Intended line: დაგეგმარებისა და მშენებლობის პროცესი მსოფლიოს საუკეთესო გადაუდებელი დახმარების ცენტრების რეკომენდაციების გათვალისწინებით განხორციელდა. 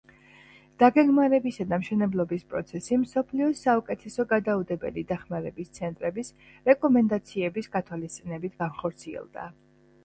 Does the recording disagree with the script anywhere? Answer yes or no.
no